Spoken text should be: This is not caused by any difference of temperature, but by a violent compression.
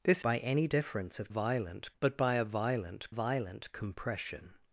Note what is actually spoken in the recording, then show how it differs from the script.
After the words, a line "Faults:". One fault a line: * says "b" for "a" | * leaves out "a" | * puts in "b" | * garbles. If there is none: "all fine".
This by any difference of violent, but by a violent violent compression.
Faults:
* leaves out "is not caused"
* says "violent" for "temperature"
* puts in "violent"